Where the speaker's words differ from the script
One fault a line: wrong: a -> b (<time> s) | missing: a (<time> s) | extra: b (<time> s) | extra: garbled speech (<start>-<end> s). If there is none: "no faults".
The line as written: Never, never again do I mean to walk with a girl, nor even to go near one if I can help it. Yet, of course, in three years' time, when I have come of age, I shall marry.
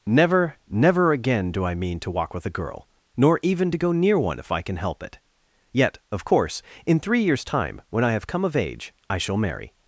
no faults